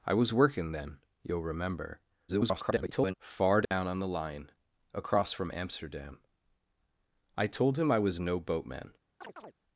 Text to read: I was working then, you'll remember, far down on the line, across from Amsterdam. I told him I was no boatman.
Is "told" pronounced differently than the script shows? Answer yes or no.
no